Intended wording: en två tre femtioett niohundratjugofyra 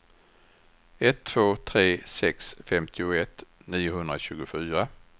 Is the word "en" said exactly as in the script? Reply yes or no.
no